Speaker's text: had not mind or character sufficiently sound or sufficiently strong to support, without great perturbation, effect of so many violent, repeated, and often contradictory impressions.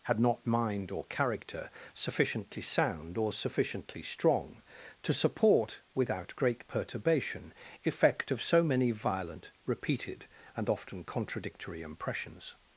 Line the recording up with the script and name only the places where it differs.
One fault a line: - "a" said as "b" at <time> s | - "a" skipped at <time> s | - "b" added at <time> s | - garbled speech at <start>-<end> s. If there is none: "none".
none